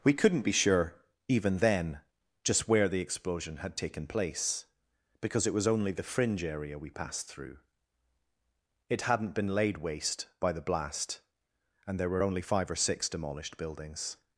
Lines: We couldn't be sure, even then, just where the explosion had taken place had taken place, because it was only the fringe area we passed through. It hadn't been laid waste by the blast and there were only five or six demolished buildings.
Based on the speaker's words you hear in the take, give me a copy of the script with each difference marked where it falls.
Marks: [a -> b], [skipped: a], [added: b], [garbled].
We couldn't be sure, even then, just where the explosion had taken place [skipped: had taken place,] because it was only the fringe area we passed through. It hadn't been laid waste by the blast and there were only five or six demolished buildings.